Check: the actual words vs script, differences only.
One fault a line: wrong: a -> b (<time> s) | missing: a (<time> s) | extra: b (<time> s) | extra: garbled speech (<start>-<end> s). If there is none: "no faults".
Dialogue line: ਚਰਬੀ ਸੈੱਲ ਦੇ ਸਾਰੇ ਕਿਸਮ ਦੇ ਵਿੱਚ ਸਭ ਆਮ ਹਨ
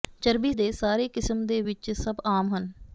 missing: ਸੈੱਲ (0.5 s)